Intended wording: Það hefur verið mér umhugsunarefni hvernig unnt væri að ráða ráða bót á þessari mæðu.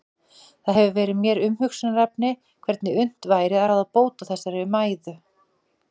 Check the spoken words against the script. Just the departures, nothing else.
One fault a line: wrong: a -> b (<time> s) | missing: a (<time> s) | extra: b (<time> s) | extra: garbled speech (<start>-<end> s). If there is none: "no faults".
missing: ráða (3.9 s)